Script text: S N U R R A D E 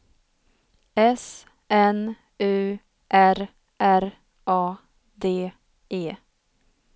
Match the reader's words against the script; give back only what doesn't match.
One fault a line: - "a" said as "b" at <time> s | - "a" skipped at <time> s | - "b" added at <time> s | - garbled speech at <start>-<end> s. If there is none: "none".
none